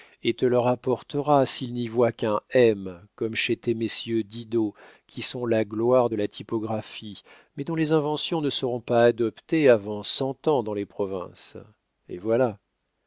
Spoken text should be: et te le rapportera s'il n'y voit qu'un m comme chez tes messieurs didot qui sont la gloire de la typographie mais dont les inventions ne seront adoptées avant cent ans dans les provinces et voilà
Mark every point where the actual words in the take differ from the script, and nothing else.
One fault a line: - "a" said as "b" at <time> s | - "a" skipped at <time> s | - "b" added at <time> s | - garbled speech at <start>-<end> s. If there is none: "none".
- "pas" added at 8.8 s